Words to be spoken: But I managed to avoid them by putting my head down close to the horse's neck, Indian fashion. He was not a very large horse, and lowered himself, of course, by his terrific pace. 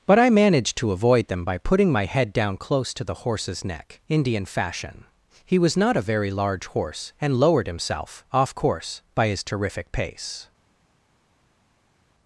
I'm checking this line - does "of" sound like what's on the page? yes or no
no